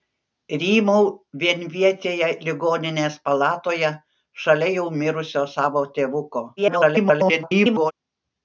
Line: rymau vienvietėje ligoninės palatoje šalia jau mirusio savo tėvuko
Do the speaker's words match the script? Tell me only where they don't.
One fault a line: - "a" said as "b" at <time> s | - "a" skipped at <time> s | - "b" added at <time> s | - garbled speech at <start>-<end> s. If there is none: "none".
- garbled speech at 6.6-7.9 s